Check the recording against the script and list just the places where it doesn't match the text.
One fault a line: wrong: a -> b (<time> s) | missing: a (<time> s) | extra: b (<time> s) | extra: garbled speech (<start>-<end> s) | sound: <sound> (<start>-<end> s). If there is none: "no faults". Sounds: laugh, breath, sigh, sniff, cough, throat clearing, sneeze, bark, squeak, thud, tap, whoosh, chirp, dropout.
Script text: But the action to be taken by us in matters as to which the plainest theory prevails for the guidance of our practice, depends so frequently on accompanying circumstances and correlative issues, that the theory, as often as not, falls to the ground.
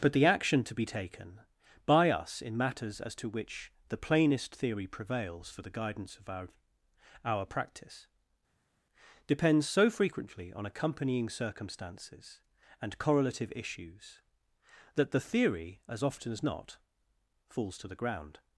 extra: our (7.2 s)